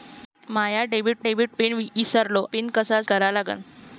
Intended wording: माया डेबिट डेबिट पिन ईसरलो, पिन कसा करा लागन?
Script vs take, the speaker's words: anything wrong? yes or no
no